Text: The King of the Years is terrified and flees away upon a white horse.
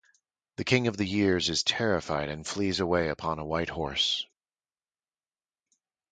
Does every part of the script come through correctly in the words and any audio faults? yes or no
yes